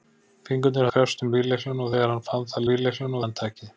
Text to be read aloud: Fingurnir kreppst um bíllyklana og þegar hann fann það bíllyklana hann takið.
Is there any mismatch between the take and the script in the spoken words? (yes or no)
no